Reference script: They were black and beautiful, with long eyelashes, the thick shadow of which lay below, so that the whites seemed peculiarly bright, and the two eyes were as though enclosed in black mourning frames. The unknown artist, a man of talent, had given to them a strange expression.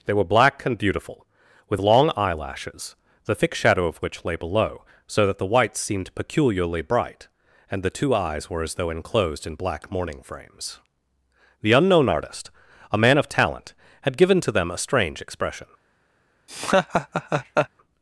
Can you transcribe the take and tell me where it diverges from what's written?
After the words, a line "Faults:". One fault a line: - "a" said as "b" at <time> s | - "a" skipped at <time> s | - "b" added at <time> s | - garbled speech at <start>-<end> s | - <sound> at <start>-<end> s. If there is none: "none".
They were black and beautiful, with long eyelashes, the thick shadow of which lay below, so that the whites seemed peculiarly bright, and the two eyes were as though enclosed in black mourning frames. The unknown artist, a man of talent, had given to them a strange expression.
Faults:
- laugh at 16.5-17.7 s